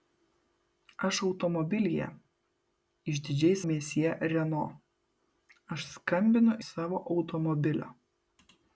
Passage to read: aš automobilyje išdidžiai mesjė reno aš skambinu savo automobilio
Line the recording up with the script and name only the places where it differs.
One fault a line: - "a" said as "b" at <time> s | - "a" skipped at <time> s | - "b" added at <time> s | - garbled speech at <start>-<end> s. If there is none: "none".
none